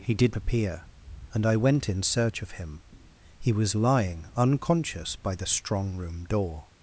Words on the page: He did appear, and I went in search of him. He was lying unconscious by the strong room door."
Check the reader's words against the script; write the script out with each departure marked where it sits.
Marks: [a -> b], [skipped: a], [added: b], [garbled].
He did appear, and I went in search of him. He was lying unconscious by the strong room door."